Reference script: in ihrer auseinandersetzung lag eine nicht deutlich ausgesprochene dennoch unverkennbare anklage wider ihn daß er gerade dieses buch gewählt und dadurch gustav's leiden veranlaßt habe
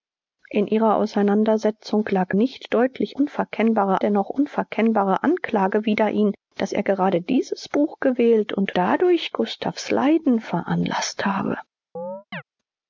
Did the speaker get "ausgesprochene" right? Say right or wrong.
wrong